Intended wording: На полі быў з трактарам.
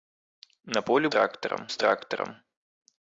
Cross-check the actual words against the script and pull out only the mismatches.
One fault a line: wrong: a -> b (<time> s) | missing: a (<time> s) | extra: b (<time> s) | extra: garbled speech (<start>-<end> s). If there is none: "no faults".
wrong: быў -> трактарам (1.2 s)